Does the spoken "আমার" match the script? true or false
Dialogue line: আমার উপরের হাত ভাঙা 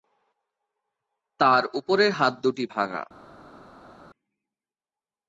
false